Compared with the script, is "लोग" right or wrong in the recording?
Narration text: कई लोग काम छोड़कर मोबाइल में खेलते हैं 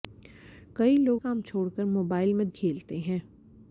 right